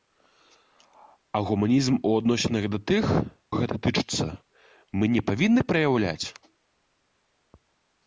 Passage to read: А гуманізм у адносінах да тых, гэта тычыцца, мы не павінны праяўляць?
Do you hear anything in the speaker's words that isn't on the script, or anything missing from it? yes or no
no